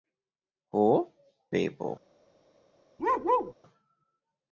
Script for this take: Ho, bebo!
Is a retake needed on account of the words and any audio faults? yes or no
yes